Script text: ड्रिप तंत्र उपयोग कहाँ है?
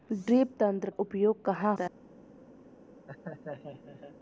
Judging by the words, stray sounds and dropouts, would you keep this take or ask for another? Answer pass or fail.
fail